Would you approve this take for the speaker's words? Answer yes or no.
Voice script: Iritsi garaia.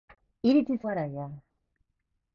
yes